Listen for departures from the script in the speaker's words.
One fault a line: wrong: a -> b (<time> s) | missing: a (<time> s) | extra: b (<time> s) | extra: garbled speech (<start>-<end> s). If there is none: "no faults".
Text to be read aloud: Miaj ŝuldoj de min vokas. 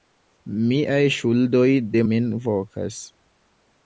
no faults